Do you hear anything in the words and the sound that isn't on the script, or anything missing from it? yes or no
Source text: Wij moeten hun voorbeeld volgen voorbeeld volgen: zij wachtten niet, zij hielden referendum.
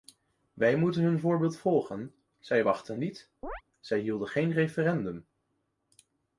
yes